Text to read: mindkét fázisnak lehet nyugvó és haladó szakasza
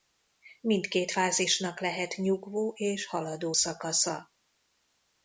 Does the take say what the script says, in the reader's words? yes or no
yes